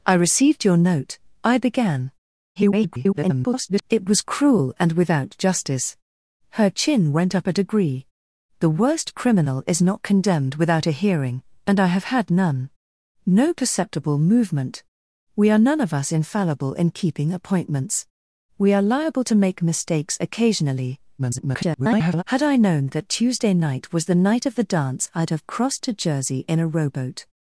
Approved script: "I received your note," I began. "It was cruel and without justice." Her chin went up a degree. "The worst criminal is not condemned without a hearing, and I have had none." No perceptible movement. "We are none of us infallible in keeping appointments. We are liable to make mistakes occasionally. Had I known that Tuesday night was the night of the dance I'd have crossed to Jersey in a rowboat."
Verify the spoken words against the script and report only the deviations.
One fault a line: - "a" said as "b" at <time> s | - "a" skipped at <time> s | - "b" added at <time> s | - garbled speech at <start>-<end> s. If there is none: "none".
- garbled speech at 2.6-3.8 s
- garbled speech at 21.2-22.2 s